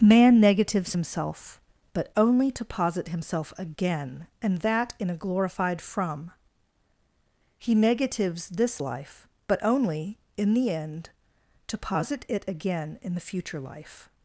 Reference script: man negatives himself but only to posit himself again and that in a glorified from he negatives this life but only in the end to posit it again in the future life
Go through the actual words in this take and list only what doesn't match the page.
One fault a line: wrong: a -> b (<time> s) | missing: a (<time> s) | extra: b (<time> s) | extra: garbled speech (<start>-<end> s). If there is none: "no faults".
no faults